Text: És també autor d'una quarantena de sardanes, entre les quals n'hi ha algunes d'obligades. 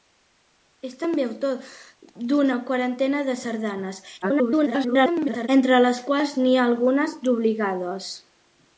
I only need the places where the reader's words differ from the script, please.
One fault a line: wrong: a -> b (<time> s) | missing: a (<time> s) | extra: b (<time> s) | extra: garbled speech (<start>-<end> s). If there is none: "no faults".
extra: garbled speech (4.2-5.5 s)